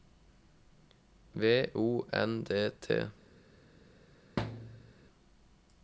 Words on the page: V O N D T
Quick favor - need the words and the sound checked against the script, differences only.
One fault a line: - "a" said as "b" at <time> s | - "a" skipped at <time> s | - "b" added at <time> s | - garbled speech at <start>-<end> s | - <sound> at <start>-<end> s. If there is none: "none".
- thud at 4.4-4.9 s